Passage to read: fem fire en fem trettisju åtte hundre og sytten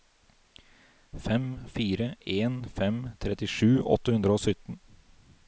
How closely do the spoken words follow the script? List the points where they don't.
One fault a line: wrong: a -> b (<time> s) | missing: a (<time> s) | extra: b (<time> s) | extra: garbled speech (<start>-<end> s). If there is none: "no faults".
no faults